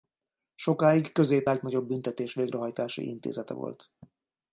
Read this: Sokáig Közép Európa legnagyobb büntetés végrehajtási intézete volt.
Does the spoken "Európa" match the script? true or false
false